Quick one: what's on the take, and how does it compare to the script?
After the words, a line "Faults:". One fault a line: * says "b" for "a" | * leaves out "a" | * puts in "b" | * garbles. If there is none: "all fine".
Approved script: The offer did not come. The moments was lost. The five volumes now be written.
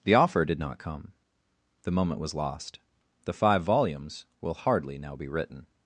The offer did not come. The moment was lost. The five volumes will hardly now be written.
Faults:
* says "moment" for "moments"
* puts in "will hardly"